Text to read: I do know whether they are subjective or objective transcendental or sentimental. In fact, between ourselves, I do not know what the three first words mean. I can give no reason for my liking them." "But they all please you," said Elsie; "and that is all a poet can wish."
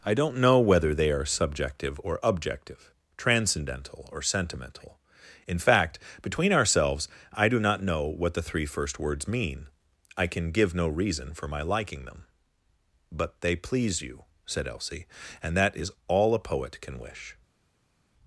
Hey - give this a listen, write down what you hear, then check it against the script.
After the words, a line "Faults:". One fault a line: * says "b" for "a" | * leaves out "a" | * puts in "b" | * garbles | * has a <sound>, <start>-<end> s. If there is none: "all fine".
I don't know whether they are subjective or objective transcendental or sentimental. In fact, between ourselves, I do not know what the three first words mean. I can give no reason for my liking them." "But they please you," said Elsie; "and that is all a poet can wish."
Faults:
* says "don't" for "do"
* leaves out "all"